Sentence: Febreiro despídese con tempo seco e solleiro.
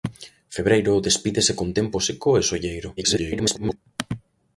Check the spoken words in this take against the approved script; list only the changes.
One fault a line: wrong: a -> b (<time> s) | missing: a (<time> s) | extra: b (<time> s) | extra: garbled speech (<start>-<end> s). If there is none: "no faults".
extra: garbled speech (3.0-3.8 s)